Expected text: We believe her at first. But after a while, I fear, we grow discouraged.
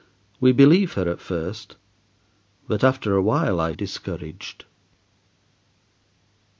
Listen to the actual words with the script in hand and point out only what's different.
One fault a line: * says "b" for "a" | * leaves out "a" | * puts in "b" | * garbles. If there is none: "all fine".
* leaves out "fear we grow"